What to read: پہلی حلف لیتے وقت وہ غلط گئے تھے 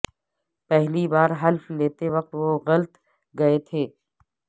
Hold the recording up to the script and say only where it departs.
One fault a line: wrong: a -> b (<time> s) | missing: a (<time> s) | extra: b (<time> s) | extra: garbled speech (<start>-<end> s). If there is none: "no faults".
extra: بار (1.1 s)